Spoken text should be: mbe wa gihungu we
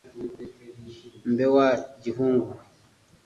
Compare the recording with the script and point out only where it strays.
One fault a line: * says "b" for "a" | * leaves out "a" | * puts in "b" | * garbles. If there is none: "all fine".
all fine